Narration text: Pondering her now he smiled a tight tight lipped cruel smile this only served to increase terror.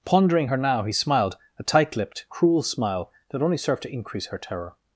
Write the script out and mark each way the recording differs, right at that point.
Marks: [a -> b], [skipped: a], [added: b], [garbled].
Pondering her now he smiled a tight [skipped: tight] lipped cruel smile [this -> that] only served to increase [added: her] terror.